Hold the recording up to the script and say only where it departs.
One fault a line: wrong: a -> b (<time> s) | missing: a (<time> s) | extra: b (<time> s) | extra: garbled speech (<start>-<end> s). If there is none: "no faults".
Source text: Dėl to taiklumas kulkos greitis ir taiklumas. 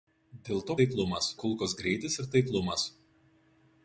no faults